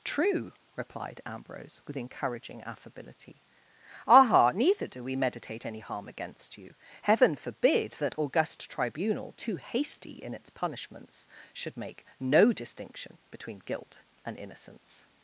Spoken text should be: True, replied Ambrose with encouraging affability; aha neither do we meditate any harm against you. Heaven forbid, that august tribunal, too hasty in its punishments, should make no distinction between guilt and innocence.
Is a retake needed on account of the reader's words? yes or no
no